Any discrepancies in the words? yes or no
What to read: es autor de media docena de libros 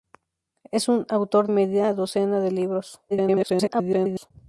yes